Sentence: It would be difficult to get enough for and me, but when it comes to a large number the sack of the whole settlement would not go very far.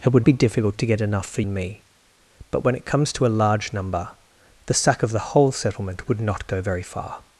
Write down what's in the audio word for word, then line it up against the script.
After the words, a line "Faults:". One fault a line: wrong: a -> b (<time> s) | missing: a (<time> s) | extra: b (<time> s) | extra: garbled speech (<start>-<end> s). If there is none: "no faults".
It would be difficult to get enough for and me, but when it comes to a large number the sack of the whole settlement would not go very far.
Faults:
no faults